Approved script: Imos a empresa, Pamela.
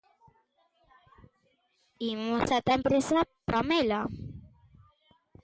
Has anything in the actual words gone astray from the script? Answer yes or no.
yes